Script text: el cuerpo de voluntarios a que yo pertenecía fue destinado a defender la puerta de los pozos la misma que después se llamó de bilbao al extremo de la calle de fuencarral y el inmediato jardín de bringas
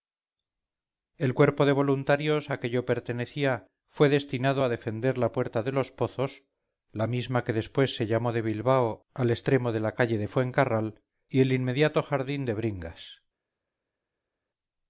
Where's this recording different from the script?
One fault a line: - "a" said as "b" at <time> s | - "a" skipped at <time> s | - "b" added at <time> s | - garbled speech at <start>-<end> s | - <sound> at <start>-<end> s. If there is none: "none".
none